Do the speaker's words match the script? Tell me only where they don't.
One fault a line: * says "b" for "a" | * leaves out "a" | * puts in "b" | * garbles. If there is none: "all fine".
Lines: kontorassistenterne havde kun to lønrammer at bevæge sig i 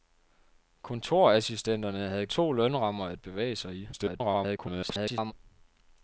* leaves out "kun"
* garbles